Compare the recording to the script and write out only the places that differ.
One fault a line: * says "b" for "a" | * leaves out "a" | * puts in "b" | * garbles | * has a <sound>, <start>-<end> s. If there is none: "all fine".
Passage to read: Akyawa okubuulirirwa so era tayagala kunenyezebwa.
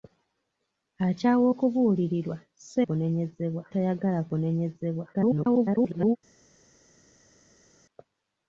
* says "kunenyezebwa" for "era"
* garbles